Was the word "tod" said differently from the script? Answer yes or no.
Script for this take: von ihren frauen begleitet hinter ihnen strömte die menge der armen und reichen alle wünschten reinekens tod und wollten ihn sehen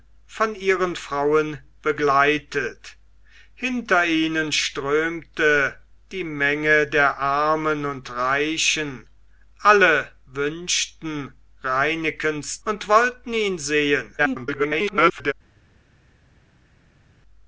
yes